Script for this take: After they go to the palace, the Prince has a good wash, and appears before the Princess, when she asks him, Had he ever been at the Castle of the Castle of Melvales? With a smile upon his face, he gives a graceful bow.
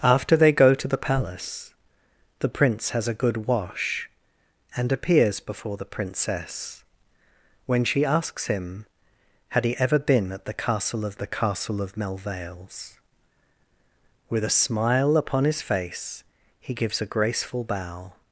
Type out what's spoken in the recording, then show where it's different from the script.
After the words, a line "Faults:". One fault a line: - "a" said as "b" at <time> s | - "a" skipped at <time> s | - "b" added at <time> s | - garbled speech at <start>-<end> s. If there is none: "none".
After they go to the palace, the Prince has a good wash, and appears before the Princess, when she asks him, Had he ever been at the Castle of the Castle of Melvales? With a smile upon his face, he gives a graceful bow.
Faults:
none